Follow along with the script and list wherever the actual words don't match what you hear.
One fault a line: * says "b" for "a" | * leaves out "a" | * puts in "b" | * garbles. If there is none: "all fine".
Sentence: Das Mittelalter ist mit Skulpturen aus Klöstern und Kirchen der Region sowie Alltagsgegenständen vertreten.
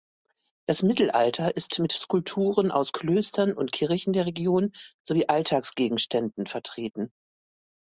all fine